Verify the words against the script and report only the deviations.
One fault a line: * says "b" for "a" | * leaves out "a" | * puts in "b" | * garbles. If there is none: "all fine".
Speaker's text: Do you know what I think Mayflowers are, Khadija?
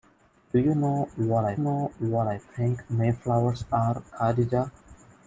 * puts in "know what I"